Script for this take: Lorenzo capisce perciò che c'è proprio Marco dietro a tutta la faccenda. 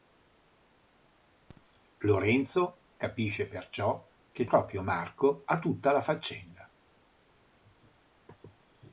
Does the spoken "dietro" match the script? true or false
false